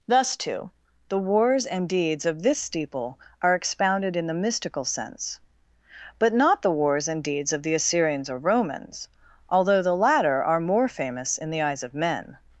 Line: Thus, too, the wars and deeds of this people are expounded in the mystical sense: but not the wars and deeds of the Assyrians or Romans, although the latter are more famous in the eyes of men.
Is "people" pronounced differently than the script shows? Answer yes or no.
yes